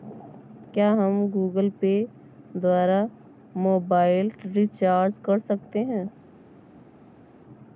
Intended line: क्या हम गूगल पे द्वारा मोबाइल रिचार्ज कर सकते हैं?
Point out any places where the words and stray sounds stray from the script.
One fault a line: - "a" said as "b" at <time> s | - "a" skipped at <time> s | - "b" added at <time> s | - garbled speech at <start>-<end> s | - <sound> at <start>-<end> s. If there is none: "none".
none